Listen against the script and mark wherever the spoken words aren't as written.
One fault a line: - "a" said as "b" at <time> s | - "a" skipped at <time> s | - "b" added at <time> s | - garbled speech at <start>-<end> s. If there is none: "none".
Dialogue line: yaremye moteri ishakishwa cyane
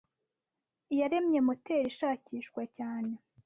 none